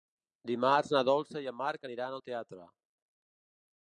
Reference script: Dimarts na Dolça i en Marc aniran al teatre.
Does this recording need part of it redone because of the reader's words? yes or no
no